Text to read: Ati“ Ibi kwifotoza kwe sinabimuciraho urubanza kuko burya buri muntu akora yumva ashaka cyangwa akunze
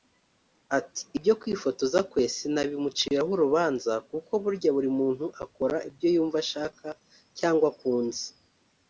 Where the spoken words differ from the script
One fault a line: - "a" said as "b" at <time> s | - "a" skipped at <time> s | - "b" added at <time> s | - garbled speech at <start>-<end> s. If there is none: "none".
- "Ibi" said as "Ibyo" at 1.2 s
- "ibyo" added at 5.9 s